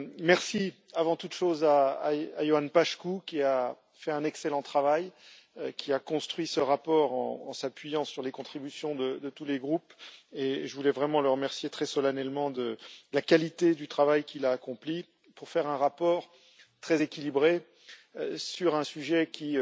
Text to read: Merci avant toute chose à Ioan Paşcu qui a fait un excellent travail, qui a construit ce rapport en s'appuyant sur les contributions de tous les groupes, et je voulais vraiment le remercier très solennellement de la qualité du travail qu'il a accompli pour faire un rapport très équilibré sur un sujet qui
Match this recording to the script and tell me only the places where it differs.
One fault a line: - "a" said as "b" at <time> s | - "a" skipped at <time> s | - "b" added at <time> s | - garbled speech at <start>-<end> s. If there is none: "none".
none